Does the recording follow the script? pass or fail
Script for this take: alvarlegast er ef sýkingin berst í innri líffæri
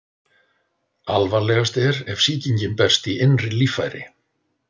pass